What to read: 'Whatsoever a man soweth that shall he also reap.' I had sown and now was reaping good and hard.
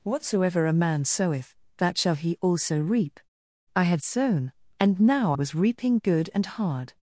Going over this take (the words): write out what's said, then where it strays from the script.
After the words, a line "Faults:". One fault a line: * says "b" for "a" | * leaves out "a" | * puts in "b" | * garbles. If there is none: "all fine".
'Whatsoever a man soweth that shall he also reap.' I had sown and now was reaping good and hard.
Faults:
all fine